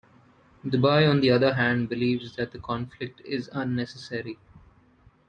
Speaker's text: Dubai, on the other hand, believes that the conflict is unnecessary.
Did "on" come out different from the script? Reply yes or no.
no